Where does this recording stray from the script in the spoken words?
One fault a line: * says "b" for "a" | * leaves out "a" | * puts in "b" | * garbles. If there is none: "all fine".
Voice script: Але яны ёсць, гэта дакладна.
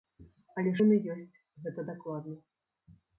all fine